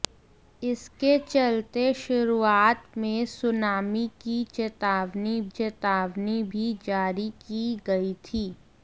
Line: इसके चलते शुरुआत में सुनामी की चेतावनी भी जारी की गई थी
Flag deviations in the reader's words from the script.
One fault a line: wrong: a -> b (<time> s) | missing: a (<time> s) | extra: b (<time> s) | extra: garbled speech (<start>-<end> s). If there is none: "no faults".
extra: चेतावनी (5.5 s)